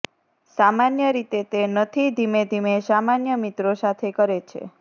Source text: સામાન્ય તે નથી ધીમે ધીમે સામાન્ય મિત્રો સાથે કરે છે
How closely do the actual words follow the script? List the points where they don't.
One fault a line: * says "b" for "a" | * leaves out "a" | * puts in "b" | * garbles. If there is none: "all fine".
* puts in "રીતે"